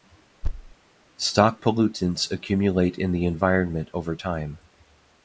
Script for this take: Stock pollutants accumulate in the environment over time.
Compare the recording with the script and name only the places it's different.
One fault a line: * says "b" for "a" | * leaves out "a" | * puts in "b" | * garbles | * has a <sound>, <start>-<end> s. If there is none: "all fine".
* has a thud, 0.4-0.7 s